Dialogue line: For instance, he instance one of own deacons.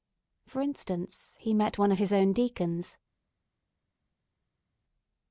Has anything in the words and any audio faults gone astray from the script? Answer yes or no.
yes